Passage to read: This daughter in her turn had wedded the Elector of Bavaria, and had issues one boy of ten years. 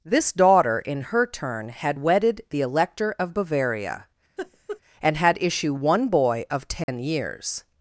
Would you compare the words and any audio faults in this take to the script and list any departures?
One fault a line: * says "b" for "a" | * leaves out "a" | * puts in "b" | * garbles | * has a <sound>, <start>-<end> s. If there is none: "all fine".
* has a laugh, 4.4-4.8 s
* says "issue" for "issues"
* has a dropout, 6.8-6.9 s